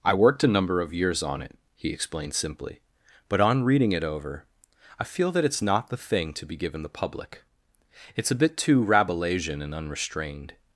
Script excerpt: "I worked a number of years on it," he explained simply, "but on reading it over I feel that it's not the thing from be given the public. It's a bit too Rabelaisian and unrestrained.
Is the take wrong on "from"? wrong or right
wrong